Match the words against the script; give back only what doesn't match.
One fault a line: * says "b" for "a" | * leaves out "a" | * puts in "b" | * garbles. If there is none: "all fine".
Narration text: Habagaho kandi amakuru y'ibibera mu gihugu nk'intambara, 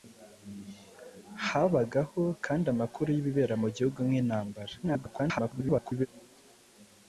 * garbles